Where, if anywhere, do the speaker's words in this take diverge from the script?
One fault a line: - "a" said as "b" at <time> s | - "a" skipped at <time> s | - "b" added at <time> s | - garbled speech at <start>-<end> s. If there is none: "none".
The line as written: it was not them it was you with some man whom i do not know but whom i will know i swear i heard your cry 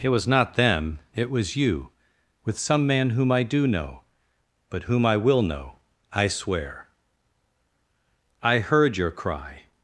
- "not" skipped at 3.7 s